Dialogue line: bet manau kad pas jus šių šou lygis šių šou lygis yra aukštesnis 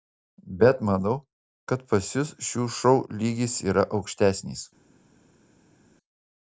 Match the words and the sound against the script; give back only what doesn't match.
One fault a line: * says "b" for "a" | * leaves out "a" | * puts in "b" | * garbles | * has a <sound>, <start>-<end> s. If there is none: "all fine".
* leaves out "šių šou lygis"